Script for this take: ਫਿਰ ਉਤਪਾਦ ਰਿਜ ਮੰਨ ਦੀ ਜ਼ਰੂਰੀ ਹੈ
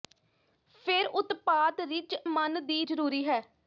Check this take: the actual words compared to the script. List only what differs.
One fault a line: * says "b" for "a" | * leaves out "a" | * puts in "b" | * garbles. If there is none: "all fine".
all fine